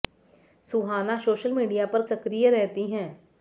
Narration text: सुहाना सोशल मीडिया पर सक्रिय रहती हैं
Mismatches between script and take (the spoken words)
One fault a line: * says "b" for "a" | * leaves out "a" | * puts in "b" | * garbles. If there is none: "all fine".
all fine